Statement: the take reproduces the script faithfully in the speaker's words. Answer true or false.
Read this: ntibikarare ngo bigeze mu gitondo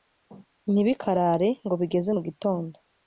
true